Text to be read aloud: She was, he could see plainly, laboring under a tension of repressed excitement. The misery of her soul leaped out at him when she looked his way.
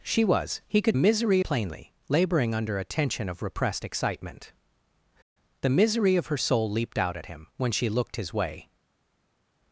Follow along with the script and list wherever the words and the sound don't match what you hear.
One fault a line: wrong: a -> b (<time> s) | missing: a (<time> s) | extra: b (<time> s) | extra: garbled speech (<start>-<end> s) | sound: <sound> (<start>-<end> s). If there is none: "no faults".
wrong: see -> misery (0.9 s)